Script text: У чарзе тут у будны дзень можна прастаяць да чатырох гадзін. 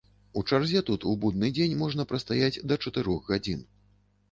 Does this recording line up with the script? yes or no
yes